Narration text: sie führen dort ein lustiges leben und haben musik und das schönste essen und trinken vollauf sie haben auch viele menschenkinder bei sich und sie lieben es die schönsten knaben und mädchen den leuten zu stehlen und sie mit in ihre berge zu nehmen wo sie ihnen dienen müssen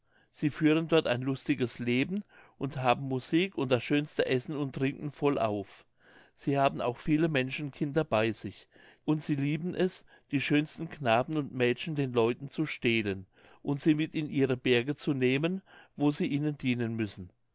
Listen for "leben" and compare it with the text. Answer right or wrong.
right